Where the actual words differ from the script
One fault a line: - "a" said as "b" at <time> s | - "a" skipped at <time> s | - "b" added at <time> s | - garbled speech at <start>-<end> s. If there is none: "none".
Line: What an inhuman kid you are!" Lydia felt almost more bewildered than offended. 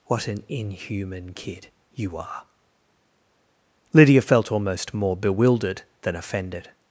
none